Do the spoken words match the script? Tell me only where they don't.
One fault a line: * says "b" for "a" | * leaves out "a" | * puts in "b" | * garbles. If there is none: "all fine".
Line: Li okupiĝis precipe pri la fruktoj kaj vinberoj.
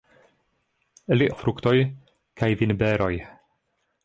* leaves out "okupiĝis precipe pri"